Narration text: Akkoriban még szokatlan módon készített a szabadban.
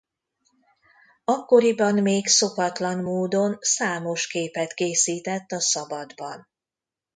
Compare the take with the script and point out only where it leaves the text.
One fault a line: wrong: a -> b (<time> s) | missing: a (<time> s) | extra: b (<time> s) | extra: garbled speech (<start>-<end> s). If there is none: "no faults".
extra: számos képet (3.6 s)